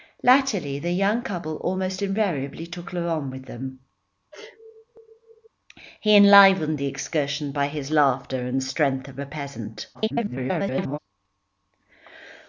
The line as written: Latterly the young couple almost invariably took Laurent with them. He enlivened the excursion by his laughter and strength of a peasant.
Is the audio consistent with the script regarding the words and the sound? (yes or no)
no